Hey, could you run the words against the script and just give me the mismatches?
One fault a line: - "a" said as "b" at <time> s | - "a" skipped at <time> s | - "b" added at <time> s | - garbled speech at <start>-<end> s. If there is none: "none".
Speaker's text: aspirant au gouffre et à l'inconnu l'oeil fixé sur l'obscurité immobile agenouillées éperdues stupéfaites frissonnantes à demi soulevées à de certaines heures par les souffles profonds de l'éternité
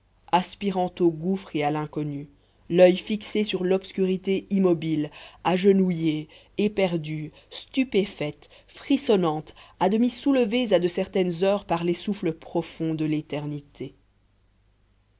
none